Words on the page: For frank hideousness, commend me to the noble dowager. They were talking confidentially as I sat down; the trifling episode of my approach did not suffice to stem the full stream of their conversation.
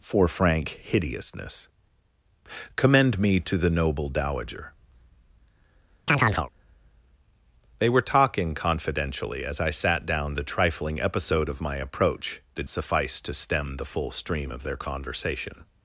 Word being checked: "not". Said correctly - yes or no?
no